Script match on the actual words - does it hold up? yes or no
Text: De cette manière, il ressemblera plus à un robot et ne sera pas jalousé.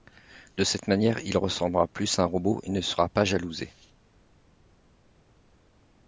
yes